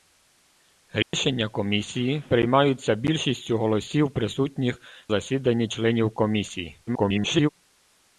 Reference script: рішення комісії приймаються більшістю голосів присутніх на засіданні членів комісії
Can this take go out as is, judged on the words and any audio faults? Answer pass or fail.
fail